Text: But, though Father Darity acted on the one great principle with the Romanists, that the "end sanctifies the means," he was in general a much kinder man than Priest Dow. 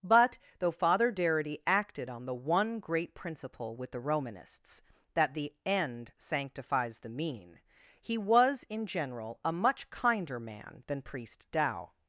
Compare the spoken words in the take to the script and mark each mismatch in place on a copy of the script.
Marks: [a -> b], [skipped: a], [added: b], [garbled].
But, though Father Darity acted on the one great principle with the Romanists, that the "end sanctifies the [means," -> mean] he was in general a much kinder man than Priest Dow.